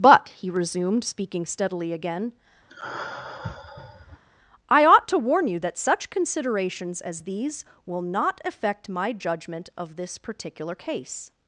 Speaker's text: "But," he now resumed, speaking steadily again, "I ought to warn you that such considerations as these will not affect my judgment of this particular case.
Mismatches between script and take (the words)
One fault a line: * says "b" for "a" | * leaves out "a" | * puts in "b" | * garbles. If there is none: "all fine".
* leaves out "now"